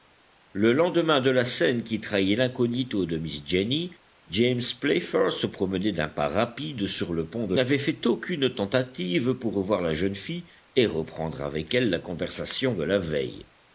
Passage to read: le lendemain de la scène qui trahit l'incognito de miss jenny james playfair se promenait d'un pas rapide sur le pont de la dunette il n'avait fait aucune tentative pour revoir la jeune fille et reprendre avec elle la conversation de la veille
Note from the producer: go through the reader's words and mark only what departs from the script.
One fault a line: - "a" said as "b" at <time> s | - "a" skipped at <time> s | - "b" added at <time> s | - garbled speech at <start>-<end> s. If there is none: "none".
- "la dunette il" skipped at 7.5 s